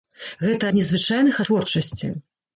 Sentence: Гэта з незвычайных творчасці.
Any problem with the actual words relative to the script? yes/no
no